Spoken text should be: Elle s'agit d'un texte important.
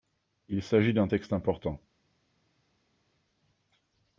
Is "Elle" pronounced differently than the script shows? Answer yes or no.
yes